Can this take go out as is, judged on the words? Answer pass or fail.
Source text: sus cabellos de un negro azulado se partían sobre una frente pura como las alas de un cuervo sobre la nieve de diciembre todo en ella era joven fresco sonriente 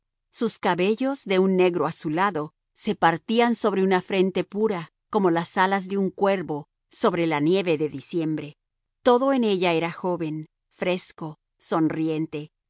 pass